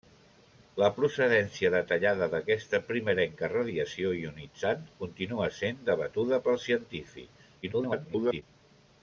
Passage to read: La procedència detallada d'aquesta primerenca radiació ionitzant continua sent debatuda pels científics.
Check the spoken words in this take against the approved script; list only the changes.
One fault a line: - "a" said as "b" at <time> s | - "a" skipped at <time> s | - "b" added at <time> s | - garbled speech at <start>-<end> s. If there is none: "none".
- garbled speech at 7.6-8.4 s